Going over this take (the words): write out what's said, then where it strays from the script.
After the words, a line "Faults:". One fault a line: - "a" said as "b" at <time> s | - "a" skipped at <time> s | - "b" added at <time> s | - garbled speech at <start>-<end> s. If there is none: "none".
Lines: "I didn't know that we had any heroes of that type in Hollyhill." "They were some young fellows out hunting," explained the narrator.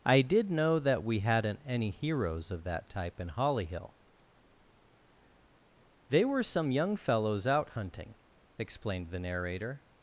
"I did know that we hadn't any heroes of that type in Hollyhill." "They were some young fellows out hunting," explained the narrator.
Faults:
- "didn't" said as "did" at 0.2 s
- "had" said as "hadn't" at 1.2 s